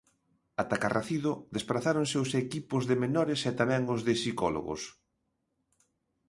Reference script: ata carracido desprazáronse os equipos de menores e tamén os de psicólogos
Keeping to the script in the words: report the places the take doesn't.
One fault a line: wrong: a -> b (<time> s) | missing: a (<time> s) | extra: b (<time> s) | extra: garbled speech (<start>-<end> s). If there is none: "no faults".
no faults